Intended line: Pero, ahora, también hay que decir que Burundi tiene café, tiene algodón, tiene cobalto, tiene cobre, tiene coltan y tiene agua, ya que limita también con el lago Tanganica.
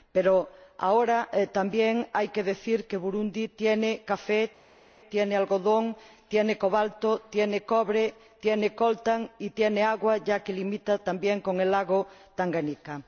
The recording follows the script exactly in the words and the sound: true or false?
true